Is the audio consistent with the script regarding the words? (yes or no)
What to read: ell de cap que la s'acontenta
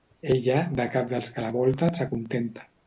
no